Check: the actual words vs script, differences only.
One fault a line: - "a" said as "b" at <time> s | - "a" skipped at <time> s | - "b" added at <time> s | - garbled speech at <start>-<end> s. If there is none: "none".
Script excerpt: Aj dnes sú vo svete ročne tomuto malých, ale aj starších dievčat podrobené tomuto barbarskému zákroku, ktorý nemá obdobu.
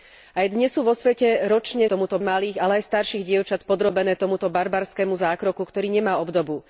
none